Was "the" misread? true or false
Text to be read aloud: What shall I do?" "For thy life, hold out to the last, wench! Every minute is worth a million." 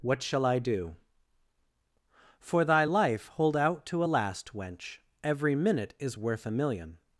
true